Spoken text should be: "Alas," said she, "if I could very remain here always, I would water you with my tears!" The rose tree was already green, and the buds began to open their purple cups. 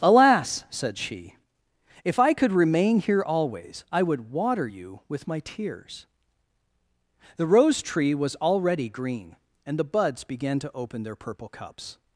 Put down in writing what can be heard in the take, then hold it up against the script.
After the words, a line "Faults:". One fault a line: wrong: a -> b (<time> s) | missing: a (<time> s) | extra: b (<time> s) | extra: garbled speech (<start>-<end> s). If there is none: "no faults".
"Alas," said she, "if I could remain here always, I would water you with my tears!" The rose tree was already green, and the buds began to open their purple cups.
Faults:
missing: very (2.5 s)